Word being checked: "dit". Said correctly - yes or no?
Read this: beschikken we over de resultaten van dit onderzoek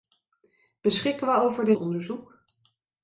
no